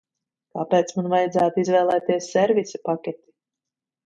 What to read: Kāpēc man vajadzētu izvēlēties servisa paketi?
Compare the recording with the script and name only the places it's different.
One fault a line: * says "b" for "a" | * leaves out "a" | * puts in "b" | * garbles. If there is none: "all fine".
all fine